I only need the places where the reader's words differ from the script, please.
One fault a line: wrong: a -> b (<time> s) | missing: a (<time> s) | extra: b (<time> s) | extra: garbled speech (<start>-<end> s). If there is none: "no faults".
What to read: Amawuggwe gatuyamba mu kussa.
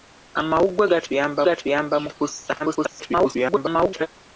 extra: gatuyamba (1.5 s)
extra: garbled speech (2.6-4.1 s)